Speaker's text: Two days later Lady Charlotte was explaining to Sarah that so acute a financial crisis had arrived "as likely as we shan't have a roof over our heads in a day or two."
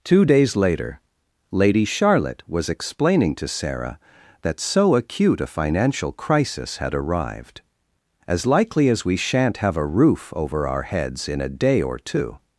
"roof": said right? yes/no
yes